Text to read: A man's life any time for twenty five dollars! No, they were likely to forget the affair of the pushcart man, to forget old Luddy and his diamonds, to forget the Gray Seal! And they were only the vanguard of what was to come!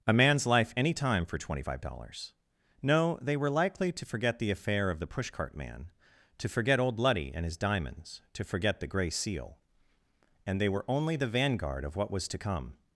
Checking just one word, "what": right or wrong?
right